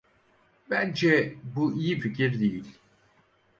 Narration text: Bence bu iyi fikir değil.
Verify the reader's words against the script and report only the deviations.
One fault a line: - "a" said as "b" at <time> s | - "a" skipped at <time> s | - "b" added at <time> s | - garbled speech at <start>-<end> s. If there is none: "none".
none